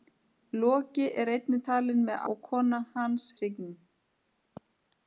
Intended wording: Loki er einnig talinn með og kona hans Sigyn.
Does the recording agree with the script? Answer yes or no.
yes